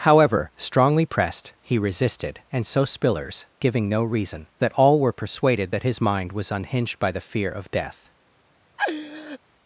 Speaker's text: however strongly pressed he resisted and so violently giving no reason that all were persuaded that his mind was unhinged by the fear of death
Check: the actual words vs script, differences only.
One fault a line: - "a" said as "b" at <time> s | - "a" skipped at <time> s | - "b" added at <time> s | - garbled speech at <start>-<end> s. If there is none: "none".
- "violently" said as "spillers" at 2.8 s